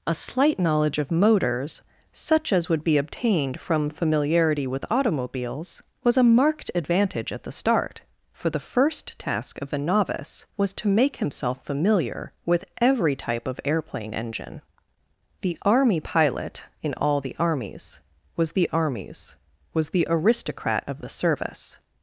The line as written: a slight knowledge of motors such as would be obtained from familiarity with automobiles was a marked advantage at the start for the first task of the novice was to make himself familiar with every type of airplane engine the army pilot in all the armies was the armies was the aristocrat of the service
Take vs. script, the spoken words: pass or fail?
pass